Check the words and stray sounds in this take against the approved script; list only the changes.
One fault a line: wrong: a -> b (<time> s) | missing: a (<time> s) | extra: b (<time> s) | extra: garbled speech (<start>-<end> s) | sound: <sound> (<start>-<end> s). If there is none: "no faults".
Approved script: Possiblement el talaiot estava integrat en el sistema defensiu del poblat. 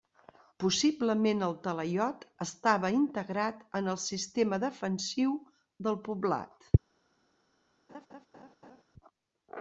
sound: laugh (7.9-8.8 s)